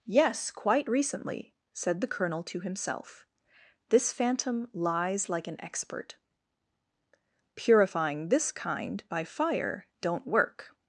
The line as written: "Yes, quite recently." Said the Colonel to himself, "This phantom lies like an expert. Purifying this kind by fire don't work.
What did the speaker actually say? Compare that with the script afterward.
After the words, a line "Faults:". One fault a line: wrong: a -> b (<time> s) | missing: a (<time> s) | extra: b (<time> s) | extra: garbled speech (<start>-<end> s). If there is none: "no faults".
"Yes, quite recently." Said the Colonel to himself, "This phantom lies like an expert. Purifying this kind by fire don't work.
Faults:
no faults